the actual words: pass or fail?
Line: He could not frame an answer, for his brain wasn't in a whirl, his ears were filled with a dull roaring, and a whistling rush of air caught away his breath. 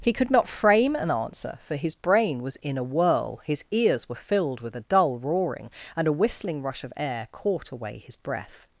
fail